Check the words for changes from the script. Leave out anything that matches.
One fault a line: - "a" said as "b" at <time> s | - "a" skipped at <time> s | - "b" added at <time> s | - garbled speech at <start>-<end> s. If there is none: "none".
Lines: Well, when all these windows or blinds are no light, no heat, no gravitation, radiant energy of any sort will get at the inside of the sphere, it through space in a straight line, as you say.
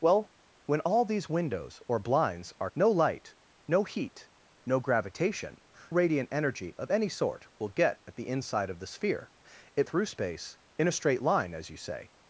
none